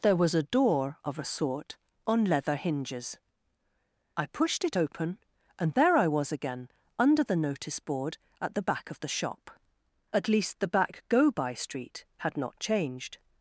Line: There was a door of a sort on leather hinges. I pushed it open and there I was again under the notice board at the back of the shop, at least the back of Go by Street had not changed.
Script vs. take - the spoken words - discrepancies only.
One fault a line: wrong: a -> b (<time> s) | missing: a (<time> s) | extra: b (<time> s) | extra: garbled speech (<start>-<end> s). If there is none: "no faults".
missing: of (11.0 s)